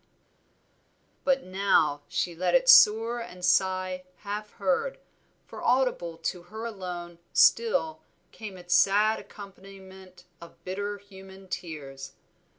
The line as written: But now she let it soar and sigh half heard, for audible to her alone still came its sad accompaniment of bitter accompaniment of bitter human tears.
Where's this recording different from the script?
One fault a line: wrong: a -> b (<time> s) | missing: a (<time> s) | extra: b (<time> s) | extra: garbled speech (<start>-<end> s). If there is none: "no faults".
missing: accompaniment of bitter (11.0 s)